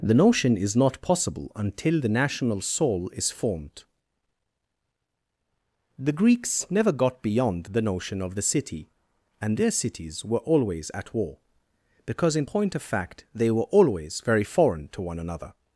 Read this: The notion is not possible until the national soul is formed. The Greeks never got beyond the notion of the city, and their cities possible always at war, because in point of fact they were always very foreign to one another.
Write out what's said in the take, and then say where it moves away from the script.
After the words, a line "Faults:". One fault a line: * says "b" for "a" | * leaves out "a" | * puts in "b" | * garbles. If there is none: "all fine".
The notion is not possible until the national soul is formed. The Greeks never got beyond the notion of the city, and their cities were always at war, because in point of fact they were always very foreign to one another.
Faults:
* says "were" for "possible"